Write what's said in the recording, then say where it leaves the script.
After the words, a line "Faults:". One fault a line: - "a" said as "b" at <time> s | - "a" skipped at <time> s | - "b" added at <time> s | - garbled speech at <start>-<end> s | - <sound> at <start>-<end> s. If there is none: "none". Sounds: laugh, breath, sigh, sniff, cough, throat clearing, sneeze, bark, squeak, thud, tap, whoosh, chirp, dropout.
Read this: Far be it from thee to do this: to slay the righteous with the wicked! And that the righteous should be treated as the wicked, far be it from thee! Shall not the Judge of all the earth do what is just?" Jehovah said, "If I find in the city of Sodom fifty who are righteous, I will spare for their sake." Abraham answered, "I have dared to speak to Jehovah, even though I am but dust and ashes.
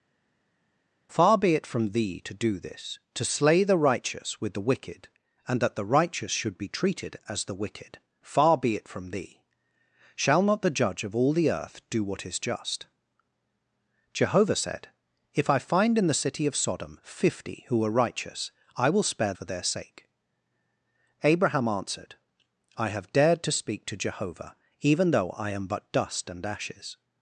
Far be it from thee to do this: to slay the righteous with the wicked! And that the righteous should be treated as the wicked, far be it from thee! Shall not the Judge of all the earth do what is just?" Jehovah said, "If I find in the city of Sodom fifty who are righteous, I will spare for their sake." Abraham answered, "I have dared to speak to Jehovah, even though I am but dust and ashes.
Faults:
none